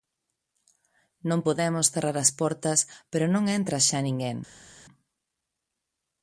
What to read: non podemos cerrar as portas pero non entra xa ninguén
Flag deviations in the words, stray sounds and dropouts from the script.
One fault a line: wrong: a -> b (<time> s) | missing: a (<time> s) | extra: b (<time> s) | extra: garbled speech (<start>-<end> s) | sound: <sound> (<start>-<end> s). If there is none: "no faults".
no faults